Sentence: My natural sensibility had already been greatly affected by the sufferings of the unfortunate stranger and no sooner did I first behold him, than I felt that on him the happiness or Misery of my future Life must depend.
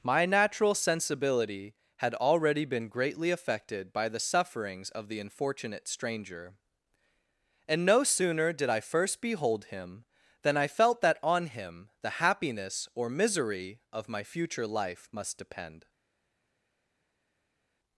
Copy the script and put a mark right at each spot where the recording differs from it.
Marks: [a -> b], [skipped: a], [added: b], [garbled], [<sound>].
My natural sensibility had already been greatly affected by the sufferings of the unfortunate stranger and no sooner did I first behold him, than I felt that on him the happiness or Misery of my future Life must depend.